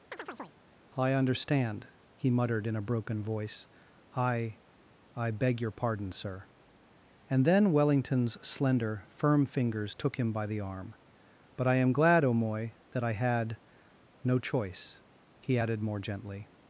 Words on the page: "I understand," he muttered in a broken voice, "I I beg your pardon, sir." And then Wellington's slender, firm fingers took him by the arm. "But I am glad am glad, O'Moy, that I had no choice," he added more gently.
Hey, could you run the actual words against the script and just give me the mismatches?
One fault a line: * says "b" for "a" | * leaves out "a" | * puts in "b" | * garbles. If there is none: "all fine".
* leaves out "am glad"